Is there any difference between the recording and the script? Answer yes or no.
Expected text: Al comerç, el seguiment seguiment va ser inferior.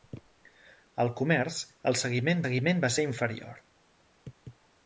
no